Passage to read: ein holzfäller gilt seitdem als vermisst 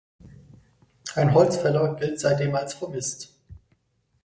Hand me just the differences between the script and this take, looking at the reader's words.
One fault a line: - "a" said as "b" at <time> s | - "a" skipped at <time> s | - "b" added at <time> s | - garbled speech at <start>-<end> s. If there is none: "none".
none